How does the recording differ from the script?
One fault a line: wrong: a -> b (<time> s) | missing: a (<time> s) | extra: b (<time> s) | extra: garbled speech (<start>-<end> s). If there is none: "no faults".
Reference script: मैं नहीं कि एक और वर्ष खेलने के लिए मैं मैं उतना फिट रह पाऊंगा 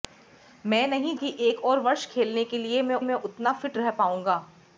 no faults